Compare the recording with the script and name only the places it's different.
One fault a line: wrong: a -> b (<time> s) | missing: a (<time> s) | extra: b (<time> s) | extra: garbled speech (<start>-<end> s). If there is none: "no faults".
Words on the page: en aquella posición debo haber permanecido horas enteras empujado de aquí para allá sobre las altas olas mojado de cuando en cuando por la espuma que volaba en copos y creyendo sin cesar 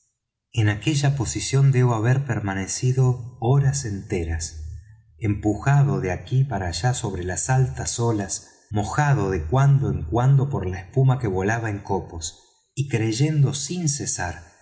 no faults